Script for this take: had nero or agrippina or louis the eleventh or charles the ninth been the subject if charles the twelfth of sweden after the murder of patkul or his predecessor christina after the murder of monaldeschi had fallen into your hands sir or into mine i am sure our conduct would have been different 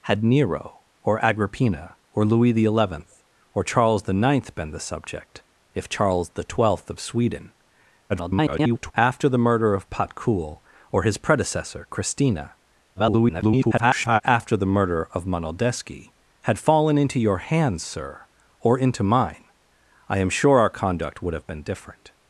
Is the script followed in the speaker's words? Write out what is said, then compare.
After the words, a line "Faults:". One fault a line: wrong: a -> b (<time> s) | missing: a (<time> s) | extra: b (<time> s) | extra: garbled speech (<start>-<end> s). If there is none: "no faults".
had nero or agrippina or louis the eleventh or charles the ninth been the subject if charles the twelfth of sweden [garbled] after the murder of patkul or his predecessor christina [garbled] after the murder of monaldeschi had fallen into your hands sir or into mine i am sure our conduct would have been different
Faults:
extra: garbled speech (8.1-8.9 s)
extra: garbled speech (13.0-14.2 s)